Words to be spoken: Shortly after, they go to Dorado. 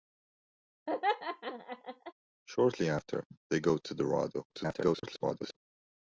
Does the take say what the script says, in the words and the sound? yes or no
no